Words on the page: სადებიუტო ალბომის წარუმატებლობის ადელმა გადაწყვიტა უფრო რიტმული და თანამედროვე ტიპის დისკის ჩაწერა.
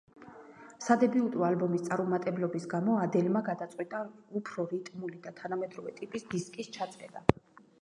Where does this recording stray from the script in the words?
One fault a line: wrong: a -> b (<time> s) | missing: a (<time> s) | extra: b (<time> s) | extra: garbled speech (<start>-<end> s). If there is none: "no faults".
extra: გამო (2.8 s)